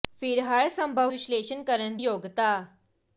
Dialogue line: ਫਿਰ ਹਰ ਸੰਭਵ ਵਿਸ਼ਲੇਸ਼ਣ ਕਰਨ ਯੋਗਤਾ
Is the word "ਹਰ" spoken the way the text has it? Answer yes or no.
yes